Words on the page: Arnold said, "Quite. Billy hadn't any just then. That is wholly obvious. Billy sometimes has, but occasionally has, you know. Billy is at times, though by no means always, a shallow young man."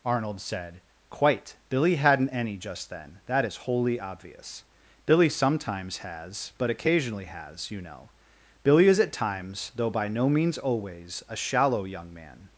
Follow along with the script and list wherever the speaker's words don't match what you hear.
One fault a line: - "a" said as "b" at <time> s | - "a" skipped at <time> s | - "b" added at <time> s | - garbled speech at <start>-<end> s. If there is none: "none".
none